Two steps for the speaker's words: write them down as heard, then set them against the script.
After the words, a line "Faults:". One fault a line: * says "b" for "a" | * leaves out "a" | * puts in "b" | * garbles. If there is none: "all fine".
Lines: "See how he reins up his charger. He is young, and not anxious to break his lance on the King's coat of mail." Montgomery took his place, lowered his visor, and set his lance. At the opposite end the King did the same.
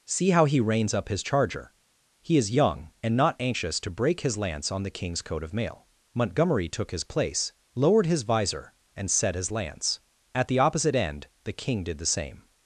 "See how he reins up his charger. He is young, and not anxious to break his lance on the King's coat of mail." Montgomery took his place, lowered his visor, and set his lance. At the opposite end the King did the same.
Faults:
all fine